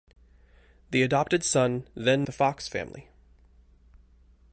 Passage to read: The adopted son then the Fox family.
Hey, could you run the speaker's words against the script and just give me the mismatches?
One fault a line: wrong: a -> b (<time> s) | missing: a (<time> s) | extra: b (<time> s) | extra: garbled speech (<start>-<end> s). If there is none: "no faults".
no faults